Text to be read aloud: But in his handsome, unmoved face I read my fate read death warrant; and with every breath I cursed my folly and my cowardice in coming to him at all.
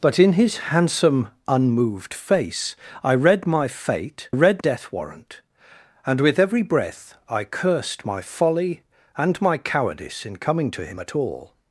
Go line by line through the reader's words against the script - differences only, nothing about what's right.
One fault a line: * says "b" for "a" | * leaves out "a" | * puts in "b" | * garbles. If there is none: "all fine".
all fine